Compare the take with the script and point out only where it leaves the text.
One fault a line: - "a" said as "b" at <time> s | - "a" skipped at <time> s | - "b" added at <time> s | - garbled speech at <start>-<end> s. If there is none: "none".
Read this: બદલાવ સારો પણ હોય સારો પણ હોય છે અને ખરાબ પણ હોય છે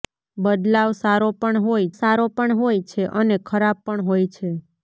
none